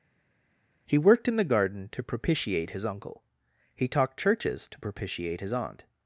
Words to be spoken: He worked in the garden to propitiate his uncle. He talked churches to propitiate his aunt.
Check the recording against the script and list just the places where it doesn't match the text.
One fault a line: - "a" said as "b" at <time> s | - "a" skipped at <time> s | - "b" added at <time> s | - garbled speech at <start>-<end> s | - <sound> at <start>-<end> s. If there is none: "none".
none